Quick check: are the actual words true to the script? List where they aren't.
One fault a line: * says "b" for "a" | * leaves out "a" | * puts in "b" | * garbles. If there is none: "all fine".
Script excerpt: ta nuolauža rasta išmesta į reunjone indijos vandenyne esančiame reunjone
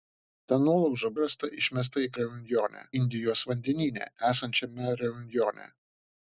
all fine